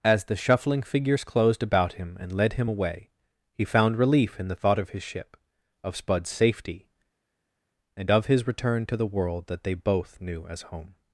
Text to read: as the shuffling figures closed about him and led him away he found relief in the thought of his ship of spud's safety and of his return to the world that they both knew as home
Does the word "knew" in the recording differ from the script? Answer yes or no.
no